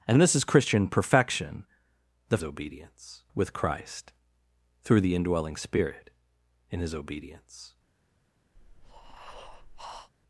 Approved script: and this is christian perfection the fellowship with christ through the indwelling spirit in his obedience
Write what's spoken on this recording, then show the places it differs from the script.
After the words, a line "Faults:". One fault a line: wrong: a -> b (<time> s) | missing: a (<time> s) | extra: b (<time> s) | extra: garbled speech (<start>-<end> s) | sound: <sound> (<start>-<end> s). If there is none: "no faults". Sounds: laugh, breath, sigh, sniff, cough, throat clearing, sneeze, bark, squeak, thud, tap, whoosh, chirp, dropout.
and this is christian perfection the obedience with christ through the indwelling spirit in his obedience
Faults:
wrong: fellowship -> obedience (2.4 s)
sound: breath (8.6-10.1 s)